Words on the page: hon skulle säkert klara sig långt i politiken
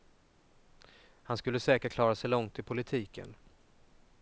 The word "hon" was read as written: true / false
false